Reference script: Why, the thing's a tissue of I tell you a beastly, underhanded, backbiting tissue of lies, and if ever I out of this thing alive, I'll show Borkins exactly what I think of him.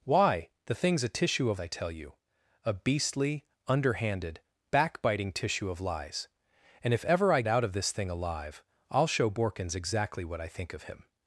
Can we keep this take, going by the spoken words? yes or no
yes